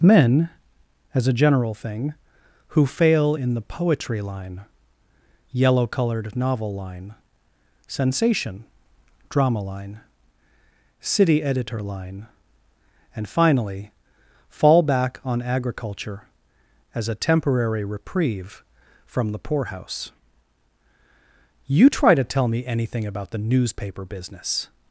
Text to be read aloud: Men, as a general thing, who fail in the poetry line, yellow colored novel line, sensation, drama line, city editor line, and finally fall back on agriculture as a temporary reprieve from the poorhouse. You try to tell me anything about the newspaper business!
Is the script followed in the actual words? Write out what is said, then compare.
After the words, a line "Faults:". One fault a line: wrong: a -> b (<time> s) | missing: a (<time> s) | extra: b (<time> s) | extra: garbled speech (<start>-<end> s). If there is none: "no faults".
Men, as a general thing, who fail in the poetry line, yellow colored novel line, sensation, drama line, city editor line, and finally fall back on agriculture as a temporary reprieve from the poorhouse. You try to tell me anything about the newspaper business!
Faults:
no faults